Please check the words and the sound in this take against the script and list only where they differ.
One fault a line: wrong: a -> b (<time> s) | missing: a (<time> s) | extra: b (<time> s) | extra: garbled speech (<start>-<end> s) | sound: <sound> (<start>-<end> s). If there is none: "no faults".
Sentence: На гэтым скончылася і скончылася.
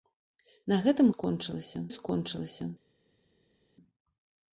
no faults